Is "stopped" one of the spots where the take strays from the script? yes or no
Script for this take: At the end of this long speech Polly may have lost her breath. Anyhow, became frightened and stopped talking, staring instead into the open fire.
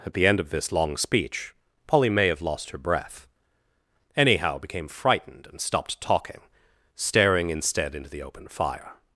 no